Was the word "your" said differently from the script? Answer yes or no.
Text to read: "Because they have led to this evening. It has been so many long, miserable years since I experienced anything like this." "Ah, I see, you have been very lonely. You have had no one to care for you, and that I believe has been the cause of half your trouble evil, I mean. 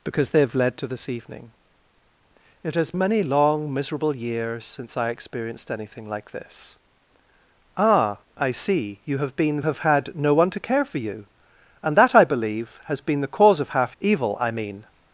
yes